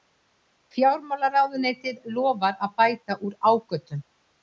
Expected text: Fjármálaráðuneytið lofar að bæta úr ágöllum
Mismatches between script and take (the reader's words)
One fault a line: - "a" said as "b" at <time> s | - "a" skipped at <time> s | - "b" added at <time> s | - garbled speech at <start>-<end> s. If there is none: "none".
none